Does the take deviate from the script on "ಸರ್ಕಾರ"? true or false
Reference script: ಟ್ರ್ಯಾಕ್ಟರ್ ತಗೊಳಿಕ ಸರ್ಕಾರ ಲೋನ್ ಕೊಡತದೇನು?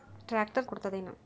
true